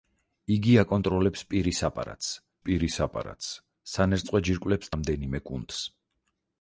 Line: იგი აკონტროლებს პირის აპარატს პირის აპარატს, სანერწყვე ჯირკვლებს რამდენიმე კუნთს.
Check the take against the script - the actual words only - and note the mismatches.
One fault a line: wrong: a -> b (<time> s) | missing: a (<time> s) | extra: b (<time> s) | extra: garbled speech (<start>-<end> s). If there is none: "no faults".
no faults